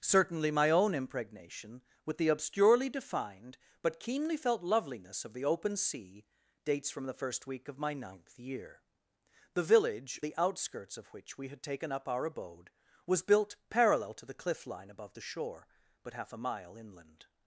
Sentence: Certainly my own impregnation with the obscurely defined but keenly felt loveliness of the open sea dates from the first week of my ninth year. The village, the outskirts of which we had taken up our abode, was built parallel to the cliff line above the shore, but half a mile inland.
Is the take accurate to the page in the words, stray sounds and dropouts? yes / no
yes